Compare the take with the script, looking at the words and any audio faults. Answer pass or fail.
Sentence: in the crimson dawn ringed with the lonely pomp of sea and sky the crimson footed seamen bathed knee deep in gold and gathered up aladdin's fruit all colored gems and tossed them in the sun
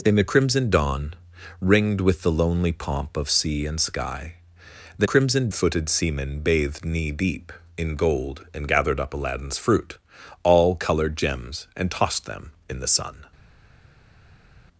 pass